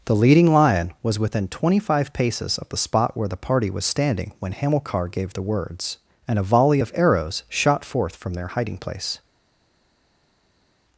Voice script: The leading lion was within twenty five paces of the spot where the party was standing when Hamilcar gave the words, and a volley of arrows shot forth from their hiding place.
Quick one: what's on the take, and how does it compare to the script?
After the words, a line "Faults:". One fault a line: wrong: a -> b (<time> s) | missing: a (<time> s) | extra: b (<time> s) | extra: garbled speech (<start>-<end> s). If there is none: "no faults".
The leading lion was within twenty five paces of the spot where the party was standing when Hamilcar gave the words, and a volley of arrows shot forth from their hiding place.
Faults:
no faults